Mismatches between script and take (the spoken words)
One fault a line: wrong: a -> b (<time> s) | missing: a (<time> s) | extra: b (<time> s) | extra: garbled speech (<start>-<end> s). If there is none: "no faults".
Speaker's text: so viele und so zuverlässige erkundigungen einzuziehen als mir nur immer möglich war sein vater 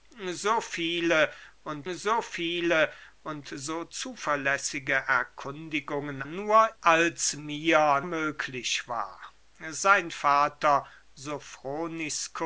extra: viele und so (2.2 s)
wrong: einzuziehen -> nur (6.2 s)
missing: nur immer (8.0 s)